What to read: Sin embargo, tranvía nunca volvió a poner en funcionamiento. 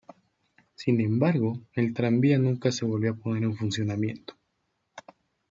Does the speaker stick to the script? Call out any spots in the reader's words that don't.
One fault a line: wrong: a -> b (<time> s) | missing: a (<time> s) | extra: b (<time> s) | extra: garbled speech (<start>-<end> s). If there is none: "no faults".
extra: el (1.8 s)
extra: se (2.7 s)